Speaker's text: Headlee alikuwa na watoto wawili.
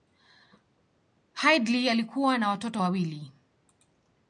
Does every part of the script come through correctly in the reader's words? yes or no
yes